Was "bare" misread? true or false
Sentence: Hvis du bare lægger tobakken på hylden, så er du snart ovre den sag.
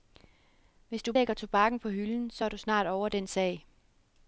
true